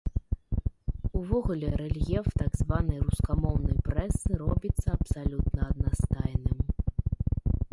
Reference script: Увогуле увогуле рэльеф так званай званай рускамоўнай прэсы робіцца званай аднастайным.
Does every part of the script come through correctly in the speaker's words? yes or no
no